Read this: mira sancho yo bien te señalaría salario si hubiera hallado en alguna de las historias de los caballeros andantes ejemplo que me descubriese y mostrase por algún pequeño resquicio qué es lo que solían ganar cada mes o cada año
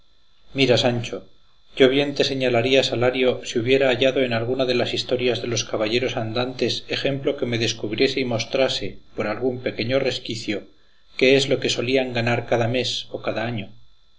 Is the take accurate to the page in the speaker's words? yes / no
yes